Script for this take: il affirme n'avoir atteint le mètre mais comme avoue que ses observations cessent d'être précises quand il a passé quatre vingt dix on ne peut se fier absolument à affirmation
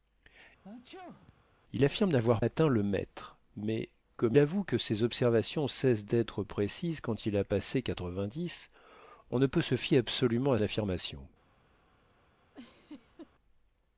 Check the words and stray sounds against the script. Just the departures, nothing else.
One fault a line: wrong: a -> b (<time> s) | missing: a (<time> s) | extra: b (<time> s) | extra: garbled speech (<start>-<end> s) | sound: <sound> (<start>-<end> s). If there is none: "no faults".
sound: sneeze (0.6-1.4 s)
sound: laugh (12.5-13.3 s)